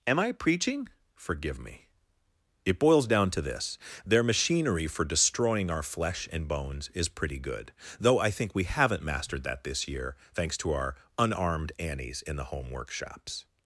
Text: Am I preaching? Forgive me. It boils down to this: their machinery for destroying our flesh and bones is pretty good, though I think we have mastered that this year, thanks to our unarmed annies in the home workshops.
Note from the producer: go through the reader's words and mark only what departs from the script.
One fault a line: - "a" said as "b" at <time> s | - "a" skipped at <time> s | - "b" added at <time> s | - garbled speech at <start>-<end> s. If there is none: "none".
- "have" said as "haven't" at 8.6 s